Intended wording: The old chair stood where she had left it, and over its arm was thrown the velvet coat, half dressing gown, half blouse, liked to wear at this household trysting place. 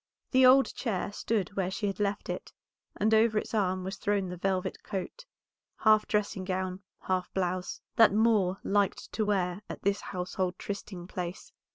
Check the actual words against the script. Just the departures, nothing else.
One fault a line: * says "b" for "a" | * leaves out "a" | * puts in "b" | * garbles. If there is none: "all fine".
* puts in "that Moor"